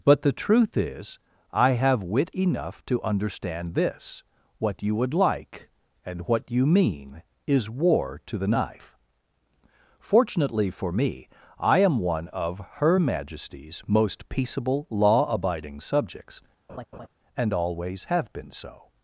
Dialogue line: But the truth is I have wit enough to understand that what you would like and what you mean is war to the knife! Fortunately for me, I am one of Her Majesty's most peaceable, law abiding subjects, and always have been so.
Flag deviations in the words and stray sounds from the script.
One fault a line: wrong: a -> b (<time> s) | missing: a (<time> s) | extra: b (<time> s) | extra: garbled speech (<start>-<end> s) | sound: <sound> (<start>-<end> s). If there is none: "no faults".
wrong: that -> this (3.8 s)
sound: laugh (16.7-17.1 s)